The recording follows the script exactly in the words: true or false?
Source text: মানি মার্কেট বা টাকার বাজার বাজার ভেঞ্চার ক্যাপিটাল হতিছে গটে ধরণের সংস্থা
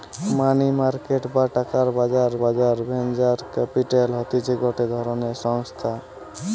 true